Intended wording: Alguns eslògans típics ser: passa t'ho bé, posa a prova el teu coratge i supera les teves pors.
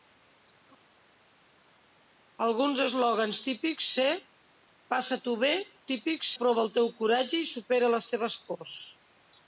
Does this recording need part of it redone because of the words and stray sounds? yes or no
yes